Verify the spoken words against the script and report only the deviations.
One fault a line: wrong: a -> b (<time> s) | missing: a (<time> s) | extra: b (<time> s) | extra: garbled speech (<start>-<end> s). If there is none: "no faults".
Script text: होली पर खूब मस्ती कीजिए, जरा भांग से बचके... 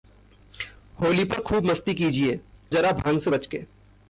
no faults